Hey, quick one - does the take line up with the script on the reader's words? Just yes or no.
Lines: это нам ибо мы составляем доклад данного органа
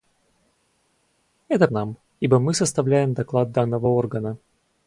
yes